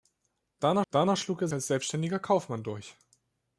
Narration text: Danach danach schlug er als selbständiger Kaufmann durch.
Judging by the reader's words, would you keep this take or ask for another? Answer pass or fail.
pass